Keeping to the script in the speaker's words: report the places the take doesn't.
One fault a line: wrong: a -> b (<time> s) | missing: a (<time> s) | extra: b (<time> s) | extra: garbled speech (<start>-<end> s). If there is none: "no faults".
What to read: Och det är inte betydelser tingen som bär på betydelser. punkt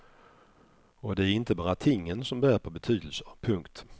wrong: betydelser -> bara (1.6 s)